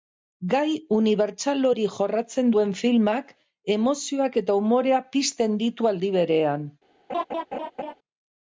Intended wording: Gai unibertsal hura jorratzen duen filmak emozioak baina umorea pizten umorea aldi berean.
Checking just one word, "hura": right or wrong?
wrong